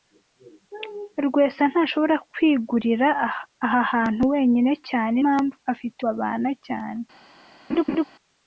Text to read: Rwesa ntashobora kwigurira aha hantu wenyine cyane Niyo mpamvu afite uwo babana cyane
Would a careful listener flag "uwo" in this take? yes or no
yes